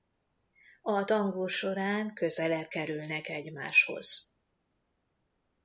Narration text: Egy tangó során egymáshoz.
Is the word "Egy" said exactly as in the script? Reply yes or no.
no